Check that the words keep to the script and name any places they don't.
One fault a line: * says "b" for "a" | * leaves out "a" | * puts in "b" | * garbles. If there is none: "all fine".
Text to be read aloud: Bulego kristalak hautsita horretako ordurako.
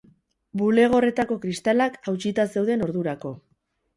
* puts in "horretako"
* says "zeuden" for "horretako"